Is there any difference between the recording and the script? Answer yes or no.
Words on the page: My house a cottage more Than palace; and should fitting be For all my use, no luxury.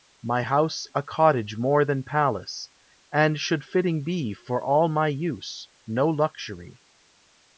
no